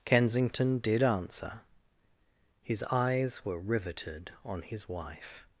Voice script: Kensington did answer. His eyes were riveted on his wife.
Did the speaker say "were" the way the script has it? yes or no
yes